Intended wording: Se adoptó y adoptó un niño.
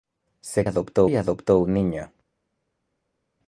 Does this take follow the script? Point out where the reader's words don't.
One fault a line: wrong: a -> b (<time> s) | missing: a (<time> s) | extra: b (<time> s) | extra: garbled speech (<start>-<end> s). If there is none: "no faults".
no faults